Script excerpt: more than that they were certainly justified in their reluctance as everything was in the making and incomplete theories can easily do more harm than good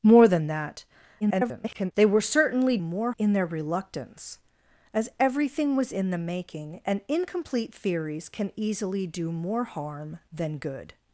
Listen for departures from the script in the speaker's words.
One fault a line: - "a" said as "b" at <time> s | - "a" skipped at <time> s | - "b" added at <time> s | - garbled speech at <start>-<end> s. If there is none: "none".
- garbled speech at 1.2-1.9 s
- "justified" said as "more" at 2.8 s